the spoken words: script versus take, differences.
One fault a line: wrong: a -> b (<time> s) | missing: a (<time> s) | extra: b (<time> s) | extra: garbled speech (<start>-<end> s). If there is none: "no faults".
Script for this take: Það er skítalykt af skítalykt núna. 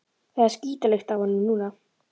wrong: skítalykt -> honum (1.2 s)